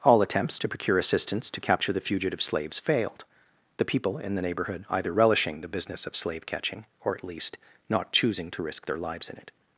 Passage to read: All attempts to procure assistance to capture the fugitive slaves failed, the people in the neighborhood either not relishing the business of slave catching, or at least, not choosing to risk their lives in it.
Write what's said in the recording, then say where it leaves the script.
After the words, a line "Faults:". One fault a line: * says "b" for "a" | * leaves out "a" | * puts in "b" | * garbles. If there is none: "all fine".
All attempts to procure assistance to capture the fugitive slaves failed, the people in the neighborhood either relishing the business of slave catching, or at least, not choosing to risk their lives in it.
Faults:
* leaves out "not"